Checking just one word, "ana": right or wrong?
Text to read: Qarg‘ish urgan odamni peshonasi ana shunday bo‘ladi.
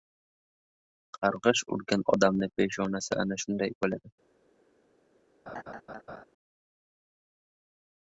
right